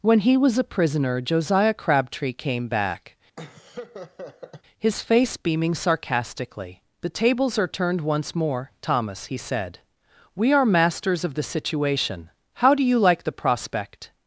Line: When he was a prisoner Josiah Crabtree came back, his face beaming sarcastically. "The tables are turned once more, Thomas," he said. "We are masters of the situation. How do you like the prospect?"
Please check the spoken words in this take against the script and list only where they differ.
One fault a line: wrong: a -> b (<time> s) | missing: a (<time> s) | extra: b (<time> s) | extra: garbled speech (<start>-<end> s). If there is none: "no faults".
no faults